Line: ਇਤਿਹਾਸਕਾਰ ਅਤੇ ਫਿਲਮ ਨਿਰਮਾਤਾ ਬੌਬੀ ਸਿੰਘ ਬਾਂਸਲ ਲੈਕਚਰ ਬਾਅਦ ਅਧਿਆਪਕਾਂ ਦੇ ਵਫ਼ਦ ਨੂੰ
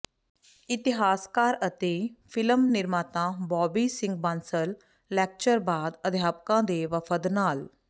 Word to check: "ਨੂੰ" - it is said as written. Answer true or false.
false